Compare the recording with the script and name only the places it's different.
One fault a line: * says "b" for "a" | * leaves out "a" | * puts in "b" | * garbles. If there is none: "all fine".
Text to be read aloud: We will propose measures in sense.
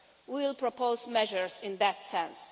* puts in "that"